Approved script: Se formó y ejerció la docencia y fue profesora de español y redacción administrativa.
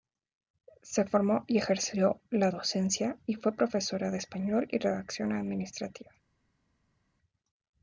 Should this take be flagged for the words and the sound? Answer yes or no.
no